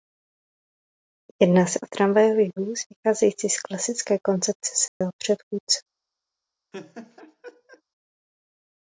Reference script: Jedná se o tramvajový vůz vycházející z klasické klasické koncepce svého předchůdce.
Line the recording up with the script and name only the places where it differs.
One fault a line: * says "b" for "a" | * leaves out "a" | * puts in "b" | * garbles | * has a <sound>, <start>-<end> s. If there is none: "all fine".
* leaves out "klasické"
* has a dropout, 4.9-5.0 s
* has a laugh, 6.7-7.8 s